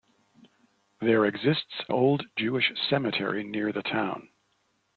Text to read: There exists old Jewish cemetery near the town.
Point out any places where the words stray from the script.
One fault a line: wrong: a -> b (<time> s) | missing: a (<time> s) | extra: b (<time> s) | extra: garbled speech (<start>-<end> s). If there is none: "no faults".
no faults